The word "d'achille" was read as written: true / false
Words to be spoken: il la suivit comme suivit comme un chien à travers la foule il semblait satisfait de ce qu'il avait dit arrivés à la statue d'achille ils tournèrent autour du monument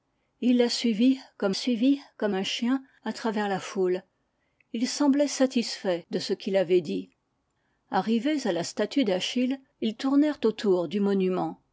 true